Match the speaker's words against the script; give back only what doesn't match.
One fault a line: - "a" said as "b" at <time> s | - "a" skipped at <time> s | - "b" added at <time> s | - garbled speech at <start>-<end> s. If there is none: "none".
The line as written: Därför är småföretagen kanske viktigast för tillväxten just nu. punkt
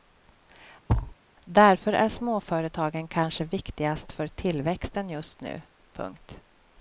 none